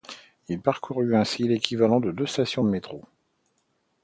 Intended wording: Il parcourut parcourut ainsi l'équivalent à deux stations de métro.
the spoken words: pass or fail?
fail